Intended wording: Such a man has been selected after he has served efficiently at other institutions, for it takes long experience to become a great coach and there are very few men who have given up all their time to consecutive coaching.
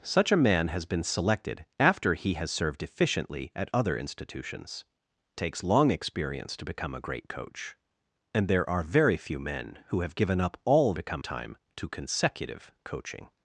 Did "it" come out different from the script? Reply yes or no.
yes